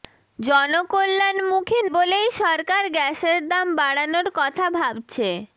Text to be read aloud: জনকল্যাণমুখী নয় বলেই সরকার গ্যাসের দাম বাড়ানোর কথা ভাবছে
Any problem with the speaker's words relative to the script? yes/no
yes